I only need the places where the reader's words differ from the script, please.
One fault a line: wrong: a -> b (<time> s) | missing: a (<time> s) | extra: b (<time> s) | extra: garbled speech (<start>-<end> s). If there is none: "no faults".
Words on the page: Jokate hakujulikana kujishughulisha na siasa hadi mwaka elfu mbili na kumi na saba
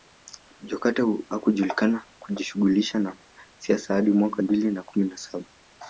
missing: elfu (4.4 s)